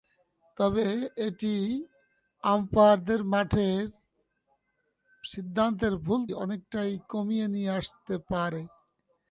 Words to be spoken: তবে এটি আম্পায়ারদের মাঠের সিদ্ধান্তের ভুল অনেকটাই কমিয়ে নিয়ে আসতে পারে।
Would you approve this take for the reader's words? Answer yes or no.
yes